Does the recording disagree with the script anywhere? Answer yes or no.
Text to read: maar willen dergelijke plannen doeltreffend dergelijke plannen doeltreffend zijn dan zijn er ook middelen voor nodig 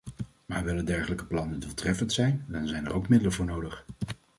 yes